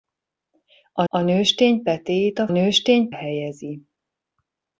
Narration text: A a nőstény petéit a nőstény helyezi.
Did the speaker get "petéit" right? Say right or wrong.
right